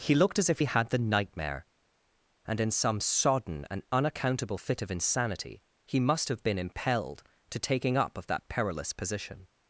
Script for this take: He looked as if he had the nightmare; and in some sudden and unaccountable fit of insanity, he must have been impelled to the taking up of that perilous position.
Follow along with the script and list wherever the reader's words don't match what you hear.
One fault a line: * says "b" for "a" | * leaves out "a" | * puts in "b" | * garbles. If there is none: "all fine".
* says "sodden" for "sudden"
* leaves out "the"